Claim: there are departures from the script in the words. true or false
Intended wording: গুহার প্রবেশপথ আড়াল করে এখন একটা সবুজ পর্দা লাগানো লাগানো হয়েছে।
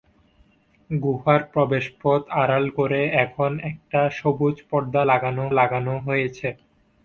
false